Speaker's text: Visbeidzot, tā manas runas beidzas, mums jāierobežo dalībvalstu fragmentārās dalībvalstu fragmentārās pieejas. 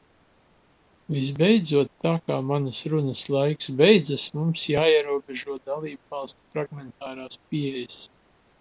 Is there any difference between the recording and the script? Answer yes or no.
yes